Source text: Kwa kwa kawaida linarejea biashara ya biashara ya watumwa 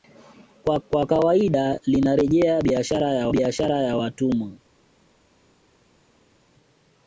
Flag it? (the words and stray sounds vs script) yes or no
no